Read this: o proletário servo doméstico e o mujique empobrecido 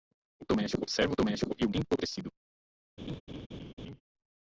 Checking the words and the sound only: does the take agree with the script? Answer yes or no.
no